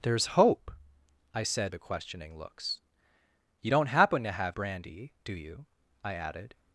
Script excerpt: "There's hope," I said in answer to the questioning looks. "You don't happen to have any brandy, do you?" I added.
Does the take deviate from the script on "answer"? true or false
true